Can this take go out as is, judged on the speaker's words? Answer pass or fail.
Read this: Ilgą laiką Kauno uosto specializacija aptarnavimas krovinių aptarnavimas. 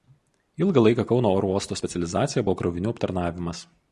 fail